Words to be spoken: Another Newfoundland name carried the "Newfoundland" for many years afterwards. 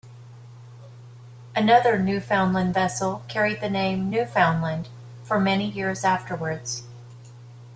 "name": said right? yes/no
no